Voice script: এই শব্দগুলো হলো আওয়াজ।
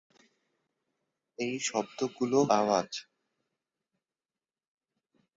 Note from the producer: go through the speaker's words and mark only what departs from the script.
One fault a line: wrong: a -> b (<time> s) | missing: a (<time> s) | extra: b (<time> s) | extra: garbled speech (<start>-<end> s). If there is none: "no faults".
missing: হলো (2.4 s)